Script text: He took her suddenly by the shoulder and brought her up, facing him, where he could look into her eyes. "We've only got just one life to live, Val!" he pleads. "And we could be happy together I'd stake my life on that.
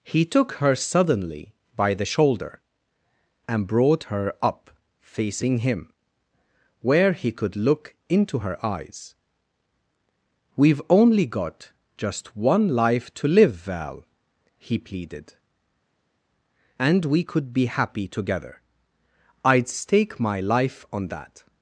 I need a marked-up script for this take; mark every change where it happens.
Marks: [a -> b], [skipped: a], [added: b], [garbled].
He took her suddenly by the shoulder and brought her up, facing him, where he could look into her eyes. "We've only got just one life to live, Val!" he [pleads. -> pleaded] "And we could be happy together I'd stake my life on that.